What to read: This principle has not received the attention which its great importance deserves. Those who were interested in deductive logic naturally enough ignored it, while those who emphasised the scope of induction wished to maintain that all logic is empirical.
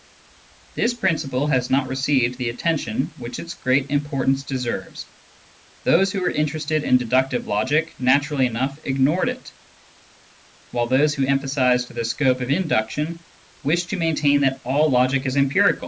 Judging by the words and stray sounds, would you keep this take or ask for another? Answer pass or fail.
pass